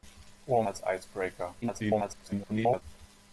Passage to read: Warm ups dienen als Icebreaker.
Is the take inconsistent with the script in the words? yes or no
yes